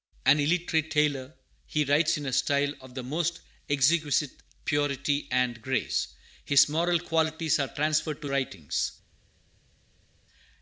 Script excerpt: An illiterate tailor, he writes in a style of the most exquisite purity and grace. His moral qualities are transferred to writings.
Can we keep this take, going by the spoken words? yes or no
yes